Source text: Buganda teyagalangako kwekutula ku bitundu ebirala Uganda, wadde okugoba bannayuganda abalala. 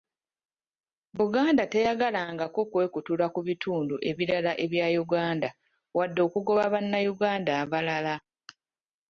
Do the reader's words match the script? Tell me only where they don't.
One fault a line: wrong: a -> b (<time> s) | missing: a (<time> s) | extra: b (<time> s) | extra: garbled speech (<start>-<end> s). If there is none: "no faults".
extra: ebya (4.6 s)